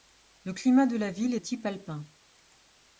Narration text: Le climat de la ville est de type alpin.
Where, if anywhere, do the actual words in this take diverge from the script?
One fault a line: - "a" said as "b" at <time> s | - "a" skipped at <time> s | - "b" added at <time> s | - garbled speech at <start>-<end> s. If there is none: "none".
- "de" skipped at 1.4 s